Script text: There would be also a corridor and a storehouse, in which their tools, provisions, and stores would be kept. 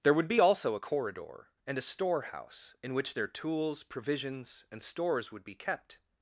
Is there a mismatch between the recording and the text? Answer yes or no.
no